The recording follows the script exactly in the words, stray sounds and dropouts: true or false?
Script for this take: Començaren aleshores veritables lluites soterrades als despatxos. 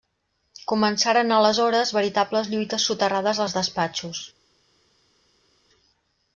true